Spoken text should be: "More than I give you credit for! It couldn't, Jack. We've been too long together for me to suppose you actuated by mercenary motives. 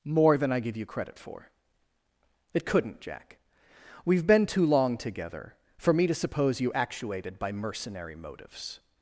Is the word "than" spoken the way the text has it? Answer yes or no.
yes